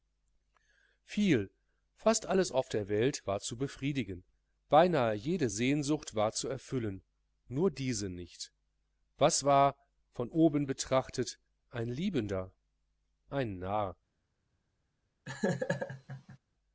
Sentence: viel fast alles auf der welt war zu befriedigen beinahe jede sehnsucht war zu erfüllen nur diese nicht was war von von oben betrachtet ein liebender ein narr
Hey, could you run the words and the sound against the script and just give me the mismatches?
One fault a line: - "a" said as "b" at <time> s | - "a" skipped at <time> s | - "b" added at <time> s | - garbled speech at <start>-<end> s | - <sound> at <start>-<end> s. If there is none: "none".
- "von" skipped at 10.3 s
- laugh at 15.3-16.4 s